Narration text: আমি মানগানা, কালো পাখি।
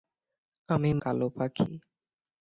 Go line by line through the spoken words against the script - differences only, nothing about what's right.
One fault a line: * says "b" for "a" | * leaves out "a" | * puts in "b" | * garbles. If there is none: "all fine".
* leaves out "মানগানা"